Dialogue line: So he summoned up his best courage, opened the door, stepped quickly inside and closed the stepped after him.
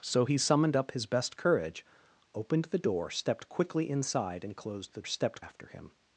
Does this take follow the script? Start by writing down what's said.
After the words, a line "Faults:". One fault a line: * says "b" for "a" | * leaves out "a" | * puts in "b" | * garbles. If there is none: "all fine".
So he summoned up his best courage, opened the door, stepped quickly inside and closed the stepped after him.
Faults:
all fine